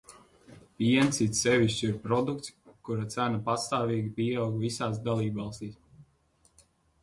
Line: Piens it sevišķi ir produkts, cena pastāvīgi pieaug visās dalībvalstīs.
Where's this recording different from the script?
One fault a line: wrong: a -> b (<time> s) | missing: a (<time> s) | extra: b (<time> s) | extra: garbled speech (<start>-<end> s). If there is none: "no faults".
extra: kura (2.9 s)